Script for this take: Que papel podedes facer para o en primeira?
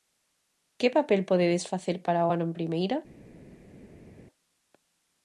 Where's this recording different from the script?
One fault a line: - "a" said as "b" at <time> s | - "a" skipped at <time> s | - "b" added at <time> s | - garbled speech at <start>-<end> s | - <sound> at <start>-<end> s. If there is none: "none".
- "ano" added at 2.3 s